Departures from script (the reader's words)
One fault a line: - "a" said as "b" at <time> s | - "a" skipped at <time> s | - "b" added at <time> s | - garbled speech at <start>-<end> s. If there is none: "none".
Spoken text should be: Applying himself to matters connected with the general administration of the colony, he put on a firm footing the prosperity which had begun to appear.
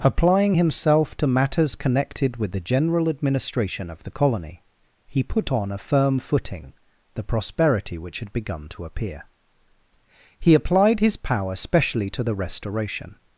- "He applied his power specially to the restoration" added at 10.4 s